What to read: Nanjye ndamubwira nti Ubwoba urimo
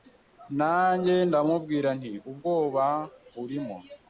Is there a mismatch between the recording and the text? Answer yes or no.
no